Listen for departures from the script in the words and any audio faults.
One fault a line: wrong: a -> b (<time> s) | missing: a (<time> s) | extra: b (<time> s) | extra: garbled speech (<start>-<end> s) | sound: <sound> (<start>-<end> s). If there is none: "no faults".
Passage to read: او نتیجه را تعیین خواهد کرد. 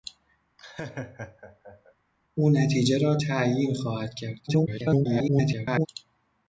sound: laugh (0.6-1.9 s)
extra: garbled speech (4.5-5.9 s)